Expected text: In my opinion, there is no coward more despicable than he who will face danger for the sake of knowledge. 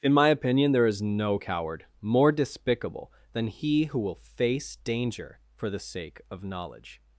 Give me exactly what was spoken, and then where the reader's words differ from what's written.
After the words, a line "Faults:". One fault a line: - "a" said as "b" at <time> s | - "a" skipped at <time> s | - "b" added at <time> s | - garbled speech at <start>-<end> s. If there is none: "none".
In my opinion, there is no coward more despicable than he who will face danger for the sake of knowledge.
Faults:
none